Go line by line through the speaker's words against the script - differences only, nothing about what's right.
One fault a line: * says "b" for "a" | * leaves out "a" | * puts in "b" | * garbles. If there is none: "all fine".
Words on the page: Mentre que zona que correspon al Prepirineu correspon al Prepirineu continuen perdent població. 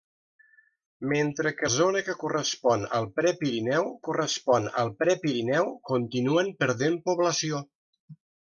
all fine